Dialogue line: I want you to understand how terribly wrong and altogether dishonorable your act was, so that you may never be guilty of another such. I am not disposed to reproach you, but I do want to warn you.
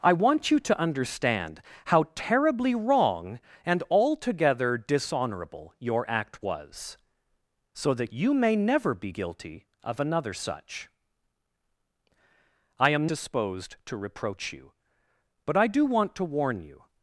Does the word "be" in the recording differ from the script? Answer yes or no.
no